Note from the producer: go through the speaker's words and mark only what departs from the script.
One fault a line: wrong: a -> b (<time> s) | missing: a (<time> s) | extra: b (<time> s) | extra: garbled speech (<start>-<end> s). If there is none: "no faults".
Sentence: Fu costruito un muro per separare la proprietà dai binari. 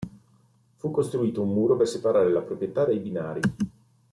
no faults